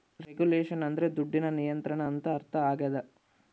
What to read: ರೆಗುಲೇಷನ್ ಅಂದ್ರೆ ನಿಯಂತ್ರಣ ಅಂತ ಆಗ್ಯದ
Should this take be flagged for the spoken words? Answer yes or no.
yes